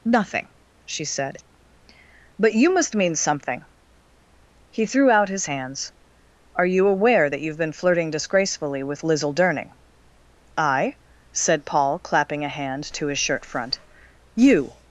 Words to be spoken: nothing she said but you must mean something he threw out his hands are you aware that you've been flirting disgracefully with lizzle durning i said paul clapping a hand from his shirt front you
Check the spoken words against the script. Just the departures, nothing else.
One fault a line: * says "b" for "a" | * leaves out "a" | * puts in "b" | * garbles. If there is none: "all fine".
* says "to" for "from"